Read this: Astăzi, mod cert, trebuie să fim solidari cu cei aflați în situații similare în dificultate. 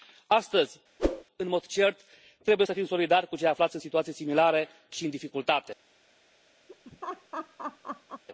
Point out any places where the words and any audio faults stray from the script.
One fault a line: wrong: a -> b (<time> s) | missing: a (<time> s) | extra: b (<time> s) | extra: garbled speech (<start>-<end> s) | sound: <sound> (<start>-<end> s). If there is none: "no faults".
sound: whoosh (1.0-1.2 s)
extra: în (1.4 s)
extra: și (4.9 s)
sound: laugh (6.7-8.2 s)